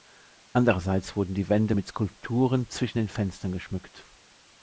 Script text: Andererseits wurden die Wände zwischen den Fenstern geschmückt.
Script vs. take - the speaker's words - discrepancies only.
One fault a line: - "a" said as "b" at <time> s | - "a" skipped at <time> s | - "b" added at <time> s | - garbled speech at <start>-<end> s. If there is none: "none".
- "mit Skulpturen" added at 1.7 s